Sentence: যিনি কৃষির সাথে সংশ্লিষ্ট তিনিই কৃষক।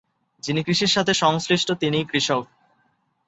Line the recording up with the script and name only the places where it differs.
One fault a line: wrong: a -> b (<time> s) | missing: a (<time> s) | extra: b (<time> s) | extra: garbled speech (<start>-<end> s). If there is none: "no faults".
no faults